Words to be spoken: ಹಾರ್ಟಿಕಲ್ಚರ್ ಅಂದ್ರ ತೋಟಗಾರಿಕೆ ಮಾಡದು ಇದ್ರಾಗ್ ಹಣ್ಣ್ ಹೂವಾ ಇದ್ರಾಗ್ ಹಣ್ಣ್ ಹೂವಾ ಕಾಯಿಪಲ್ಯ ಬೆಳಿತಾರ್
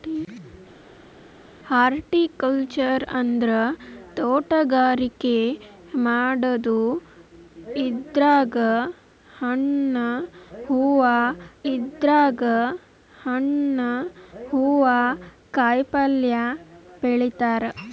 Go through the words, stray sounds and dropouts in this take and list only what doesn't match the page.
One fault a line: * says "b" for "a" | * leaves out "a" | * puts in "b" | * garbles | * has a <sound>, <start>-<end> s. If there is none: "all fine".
all fine